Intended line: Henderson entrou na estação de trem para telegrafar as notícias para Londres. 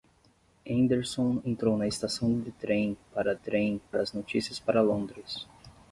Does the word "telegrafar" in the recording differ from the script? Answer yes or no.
yes